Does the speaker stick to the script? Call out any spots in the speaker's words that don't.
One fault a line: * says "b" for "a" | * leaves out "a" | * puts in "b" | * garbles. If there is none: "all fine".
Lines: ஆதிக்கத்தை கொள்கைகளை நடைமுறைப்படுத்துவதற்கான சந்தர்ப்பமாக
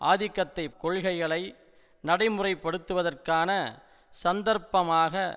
all fine